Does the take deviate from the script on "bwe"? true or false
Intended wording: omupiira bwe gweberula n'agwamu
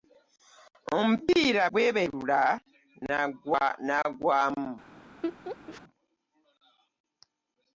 true